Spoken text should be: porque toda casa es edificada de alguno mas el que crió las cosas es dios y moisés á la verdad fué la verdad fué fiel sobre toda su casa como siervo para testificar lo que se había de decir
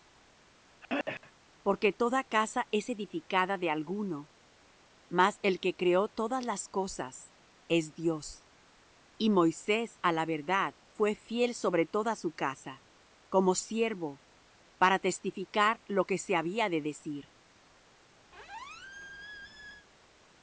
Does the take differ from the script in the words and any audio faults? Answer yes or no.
yes